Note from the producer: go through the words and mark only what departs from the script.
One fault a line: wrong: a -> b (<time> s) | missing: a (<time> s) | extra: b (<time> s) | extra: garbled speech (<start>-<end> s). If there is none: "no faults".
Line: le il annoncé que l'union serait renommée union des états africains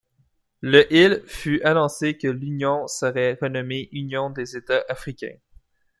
extra: fut (1.3 s)